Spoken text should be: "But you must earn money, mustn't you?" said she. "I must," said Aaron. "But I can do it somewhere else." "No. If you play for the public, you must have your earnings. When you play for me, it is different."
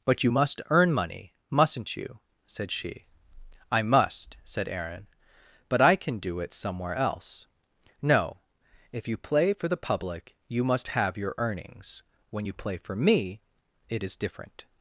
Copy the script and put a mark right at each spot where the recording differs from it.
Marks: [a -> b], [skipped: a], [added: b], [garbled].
"But you must earn money, mustn't you?" said she. "I must," said Aaron. "But I can do it somewhere else." "No. If you play for the public, you must have your earnings. When you play for me, it is different."